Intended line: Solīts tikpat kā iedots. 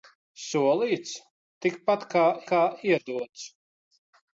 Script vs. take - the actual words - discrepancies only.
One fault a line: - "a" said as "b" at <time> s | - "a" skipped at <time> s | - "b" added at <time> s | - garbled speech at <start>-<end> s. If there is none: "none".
- "kā" added at 2.5 s